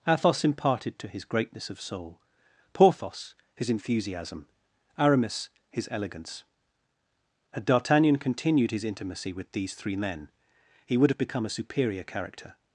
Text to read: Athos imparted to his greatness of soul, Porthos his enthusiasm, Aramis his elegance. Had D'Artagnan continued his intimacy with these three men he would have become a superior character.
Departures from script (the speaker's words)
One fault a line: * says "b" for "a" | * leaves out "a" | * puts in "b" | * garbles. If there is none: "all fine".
all fine